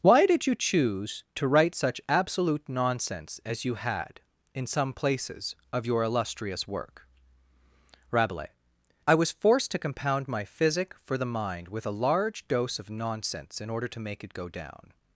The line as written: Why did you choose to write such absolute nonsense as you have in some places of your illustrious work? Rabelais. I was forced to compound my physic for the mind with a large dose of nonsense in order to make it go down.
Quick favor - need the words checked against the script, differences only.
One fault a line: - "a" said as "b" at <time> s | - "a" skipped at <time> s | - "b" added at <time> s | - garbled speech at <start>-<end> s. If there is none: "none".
- "have" said as "had" at 3.8 s